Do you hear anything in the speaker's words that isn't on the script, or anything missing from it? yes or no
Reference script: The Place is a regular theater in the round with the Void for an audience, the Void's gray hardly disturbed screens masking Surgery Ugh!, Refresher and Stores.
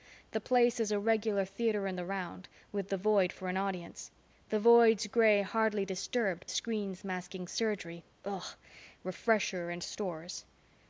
no